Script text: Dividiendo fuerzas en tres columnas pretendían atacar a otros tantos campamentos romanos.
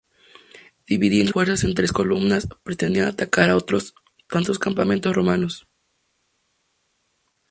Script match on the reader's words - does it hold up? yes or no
yes